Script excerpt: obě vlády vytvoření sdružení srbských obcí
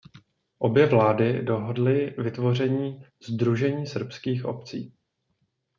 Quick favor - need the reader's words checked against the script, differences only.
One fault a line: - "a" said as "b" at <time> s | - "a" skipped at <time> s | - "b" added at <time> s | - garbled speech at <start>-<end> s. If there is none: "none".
- "dohodly" added at 1.4 s